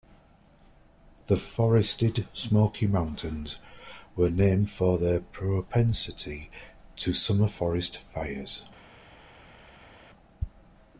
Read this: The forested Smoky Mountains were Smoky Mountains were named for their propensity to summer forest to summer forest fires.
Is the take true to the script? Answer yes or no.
no